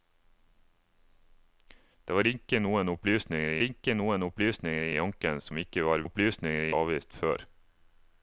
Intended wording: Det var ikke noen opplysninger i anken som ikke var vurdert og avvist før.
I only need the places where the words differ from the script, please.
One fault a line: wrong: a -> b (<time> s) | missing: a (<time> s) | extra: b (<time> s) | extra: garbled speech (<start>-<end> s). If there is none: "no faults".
extra: ikke noen opplysninger (3.6 s)
wrong: vurdert -> opplysninger (6.0 s)